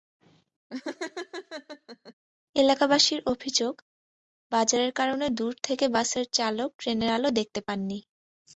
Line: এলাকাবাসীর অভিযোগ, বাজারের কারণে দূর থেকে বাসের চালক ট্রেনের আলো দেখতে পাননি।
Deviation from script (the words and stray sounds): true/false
true